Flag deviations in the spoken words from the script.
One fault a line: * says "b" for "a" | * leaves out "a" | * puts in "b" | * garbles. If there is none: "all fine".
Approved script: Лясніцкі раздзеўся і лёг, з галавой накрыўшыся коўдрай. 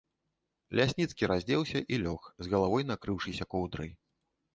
all fine